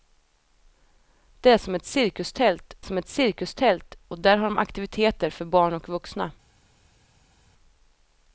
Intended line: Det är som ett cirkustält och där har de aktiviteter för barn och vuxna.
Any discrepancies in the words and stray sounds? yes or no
yes